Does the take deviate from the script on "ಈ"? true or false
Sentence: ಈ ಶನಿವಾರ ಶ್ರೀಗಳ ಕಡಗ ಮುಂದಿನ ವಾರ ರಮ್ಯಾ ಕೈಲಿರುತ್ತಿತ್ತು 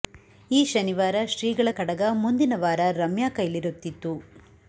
false